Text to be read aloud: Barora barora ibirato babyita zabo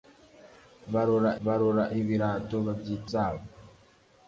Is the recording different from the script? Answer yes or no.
no